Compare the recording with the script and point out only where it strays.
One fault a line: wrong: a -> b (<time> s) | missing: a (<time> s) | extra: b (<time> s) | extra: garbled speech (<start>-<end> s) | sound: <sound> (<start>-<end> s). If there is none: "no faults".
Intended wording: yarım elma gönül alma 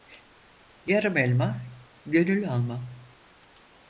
no faults